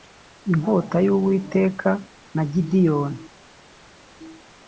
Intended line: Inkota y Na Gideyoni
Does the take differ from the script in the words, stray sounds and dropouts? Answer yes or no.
yes